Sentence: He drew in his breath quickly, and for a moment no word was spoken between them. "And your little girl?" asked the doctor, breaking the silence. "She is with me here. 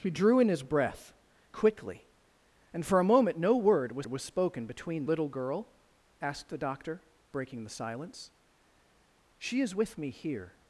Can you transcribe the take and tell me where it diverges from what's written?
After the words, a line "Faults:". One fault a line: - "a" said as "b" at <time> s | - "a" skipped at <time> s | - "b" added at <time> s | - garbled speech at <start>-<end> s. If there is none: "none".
He drew in his breath quickly, and for a moment no word was was spoken between little girl?" asked the doctor, breaking the silence. "She is with me here.
Faults:
- "was" added at 4.1 s
- "them And your" skipped at 5.0 s